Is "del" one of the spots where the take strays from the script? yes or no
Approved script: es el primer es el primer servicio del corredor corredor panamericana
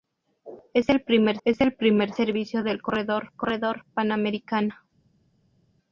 no